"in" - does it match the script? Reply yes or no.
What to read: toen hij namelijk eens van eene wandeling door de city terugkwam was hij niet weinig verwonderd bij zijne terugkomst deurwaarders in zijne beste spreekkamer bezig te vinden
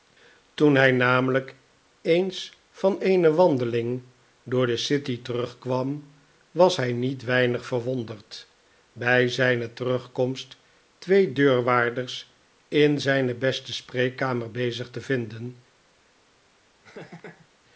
yes